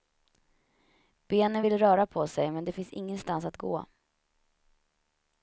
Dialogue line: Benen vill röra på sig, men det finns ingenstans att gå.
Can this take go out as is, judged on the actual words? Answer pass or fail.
pass